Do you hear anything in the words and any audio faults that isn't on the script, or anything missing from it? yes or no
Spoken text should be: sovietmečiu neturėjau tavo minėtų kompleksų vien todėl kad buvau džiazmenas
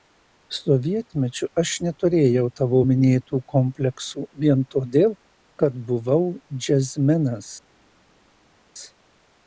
yes